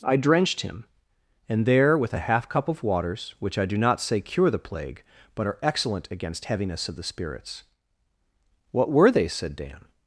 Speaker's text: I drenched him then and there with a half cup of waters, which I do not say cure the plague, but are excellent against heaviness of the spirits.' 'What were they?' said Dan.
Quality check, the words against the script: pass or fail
fail